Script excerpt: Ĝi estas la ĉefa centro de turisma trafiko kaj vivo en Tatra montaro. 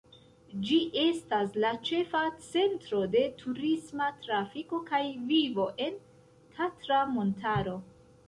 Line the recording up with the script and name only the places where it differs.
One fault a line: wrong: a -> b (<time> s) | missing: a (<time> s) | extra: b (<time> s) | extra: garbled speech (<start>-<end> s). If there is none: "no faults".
no faults